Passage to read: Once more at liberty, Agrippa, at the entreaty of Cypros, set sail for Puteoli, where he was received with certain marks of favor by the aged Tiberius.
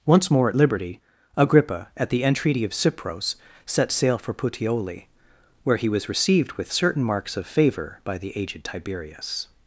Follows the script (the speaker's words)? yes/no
yes